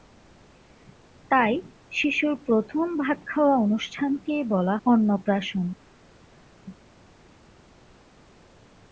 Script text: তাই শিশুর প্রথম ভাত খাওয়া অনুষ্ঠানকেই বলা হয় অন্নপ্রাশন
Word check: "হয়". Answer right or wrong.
wrong